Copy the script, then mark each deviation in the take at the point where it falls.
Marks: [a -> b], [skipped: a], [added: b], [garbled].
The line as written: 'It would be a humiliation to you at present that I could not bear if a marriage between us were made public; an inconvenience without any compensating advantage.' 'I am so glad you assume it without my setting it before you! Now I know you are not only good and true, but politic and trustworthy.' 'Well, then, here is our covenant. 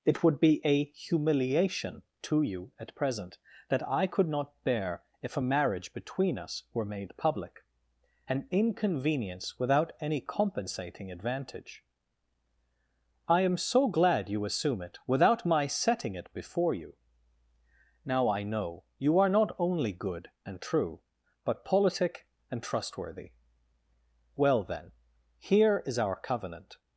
'It would be a humiliation to you at present that I could not bear if a marriage between us were made public; an inconvenience without any compensating advantage.' 'I am so glad you assume it without my setting it before you! Now I know you are not only good and true, but politic and trustworthy.' 'Well, then, here is our covenant.